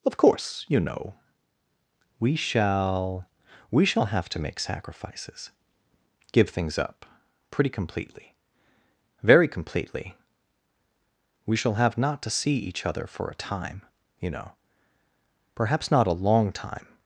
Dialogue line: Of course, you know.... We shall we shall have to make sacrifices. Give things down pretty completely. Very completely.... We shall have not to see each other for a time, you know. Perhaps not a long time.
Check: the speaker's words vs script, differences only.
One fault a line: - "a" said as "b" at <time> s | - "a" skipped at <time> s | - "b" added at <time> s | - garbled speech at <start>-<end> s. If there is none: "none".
- "down" said as "up" at 6.8 s